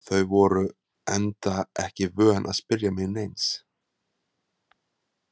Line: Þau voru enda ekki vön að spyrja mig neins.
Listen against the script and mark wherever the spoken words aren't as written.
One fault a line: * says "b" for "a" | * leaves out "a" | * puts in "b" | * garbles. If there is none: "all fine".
all fine